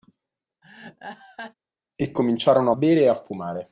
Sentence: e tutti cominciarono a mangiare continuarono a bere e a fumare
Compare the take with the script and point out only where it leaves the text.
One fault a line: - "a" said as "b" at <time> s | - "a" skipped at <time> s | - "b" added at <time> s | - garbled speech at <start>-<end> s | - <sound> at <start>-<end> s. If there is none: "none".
- laugh at 0.6-1.5 s
- "tutti" skipped at 2.1 s
- "mangiare continuarono" skipped at 2.7 s